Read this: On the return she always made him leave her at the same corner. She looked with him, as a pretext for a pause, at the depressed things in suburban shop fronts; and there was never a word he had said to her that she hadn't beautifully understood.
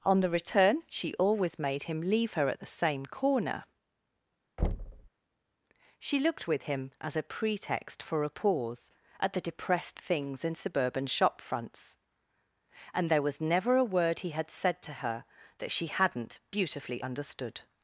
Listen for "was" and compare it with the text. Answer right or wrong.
right